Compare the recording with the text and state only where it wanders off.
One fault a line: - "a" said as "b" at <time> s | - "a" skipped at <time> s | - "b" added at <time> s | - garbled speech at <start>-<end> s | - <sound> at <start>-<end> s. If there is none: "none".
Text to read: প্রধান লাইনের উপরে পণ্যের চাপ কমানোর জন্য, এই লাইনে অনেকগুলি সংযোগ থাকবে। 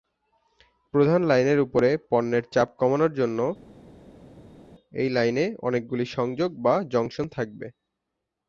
- "বা জংশন" added at 6.6 s